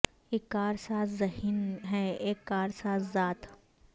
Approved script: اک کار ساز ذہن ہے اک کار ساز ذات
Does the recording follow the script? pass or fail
pass